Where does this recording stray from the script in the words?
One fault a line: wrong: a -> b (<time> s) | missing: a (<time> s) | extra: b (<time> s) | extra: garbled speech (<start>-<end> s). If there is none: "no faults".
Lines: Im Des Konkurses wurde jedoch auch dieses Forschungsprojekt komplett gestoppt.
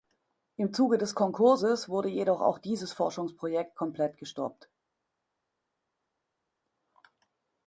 extra: Zuge (0.7 s)